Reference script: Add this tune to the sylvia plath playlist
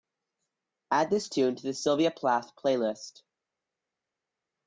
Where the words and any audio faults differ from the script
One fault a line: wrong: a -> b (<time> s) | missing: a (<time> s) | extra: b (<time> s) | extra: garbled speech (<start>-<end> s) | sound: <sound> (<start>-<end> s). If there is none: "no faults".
no faults